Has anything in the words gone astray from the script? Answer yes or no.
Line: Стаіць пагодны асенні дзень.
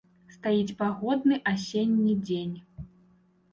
no